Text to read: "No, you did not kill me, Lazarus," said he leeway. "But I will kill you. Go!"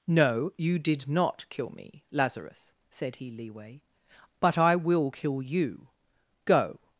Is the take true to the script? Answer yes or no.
yes